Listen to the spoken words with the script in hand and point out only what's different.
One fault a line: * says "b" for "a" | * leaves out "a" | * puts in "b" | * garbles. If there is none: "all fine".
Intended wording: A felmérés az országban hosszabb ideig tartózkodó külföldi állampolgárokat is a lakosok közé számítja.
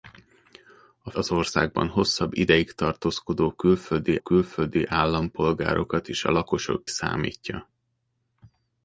* leaves out "felmérés"
* puts in "külföldi"
* leaves out "közé"